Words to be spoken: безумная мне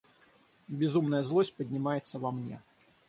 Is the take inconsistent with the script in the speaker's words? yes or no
yes